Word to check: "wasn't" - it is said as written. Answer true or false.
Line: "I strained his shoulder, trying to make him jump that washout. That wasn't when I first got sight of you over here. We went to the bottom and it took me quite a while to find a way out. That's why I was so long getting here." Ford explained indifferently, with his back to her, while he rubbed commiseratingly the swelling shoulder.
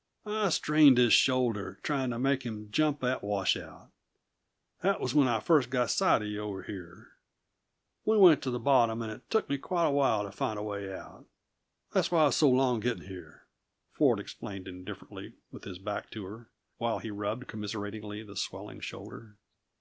false